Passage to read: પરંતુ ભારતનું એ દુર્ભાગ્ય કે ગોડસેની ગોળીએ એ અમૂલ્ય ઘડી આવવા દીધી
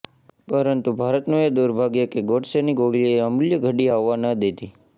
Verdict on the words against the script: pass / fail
fail